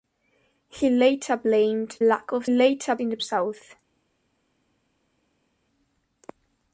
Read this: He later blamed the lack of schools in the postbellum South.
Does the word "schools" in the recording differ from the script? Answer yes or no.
yes